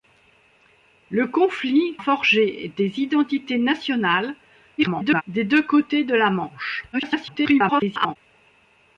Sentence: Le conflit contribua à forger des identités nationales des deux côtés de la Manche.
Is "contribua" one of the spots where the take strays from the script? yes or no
yes